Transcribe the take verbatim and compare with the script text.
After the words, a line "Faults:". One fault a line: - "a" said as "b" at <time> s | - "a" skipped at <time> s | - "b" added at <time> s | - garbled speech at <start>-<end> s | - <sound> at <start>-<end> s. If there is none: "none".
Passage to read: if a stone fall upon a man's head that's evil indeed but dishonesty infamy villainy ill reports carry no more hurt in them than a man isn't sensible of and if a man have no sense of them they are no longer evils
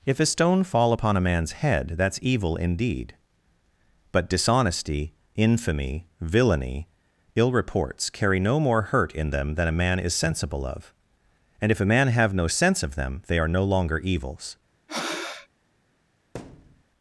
if a stone fall upon a man's head that's evil indeed but dishonesty infamy villainy ill reports carry no more hurt in them than a man is sensible of and if a man have no sense of them they are no longer evils
Faults:
- "isn't" said as "is" at 10.0 s
- breath at 14.9-15.5 s
- thud at 16.3-16.8 s